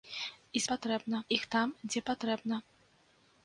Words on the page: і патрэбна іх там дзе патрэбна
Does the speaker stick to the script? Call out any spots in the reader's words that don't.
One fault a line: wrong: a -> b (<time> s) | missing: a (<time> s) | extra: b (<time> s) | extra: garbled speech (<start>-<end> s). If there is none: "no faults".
no faults